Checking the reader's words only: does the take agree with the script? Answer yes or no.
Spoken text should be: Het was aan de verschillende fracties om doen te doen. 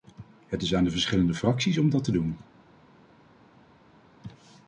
no